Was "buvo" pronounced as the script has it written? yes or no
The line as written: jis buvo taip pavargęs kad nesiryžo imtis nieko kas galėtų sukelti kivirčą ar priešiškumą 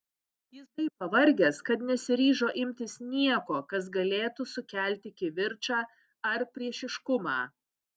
no